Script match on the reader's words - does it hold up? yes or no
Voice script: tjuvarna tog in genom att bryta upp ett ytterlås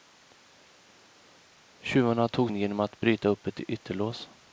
yes